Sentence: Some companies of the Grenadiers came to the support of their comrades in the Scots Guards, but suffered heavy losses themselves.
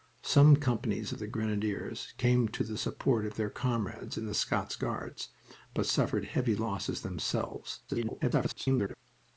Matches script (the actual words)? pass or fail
fail